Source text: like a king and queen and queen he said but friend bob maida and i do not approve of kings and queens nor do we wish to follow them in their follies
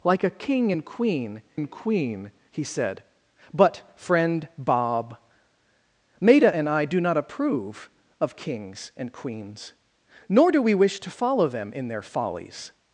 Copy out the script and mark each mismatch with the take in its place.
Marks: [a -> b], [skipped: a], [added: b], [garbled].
like a king and queen and queen he said but friend bob maida and i do not approve of kings and queens nor do we wish to follow them in their follies